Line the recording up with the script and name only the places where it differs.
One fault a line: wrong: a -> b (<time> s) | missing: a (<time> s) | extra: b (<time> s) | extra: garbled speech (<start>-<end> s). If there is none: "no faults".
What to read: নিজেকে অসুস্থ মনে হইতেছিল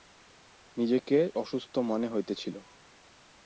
no faults